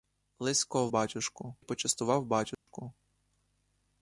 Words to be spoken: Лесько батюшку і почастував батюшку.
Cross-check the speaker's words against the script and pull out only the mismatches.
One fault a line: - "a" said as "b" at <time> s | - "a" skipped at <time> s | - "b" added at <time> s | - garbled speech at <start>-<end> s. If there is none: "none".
none